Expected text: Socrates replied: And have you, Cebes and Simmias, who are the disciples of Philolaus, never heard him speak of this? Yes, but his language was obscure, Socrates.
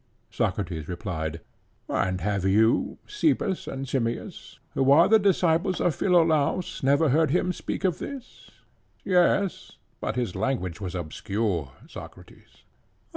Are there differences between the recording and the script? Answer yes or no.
no